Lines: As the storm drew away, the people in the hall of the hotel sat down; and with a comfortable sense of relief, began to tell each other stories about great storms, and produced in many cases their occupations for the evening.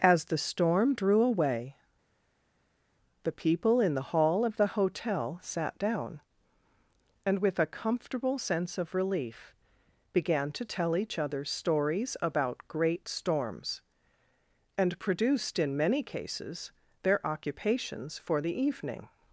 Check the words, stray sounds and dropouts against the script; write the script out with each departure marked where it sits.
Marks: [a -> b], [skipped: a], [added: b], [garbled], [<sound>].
As the storm drew away, the people in the hall of the hotel sat down; and with a comfortable sense of relief, began to tell each other stories about great storms, and produced in many cases their occupations for the evening.